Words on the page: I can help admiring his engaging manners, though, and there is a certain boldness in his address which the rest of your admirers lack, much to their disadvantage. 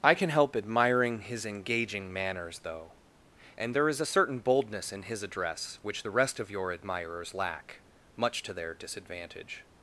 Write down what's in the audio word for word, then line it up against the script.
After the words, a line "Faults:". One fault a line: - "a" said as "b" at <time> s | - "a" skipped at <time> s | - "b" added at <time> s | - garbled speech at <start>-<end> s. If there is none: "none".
I can help admiring his engaging manners, though, and there is a certain boldness in his address which the rest of your admirers lack, much to their disadvantage.
Faults:
none